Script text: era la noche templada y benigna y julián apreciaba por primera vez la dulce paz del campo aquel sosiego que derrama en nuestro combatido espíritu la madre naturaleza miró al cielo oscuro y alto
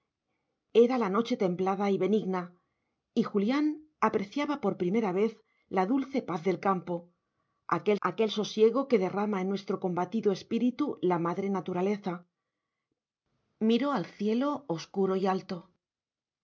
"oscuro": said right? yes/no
yes